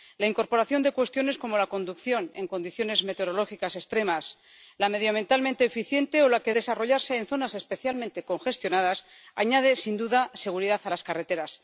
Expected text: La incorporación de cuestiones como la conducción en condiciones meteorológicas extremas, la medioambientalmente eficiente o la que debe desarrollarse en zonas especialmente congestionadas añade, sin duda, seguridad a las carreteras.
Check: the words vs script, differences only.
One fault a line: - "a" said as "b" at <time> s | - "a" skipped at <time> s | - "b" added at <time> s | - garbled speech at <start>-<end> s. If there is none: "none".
- "debe" skipped at 6.5 s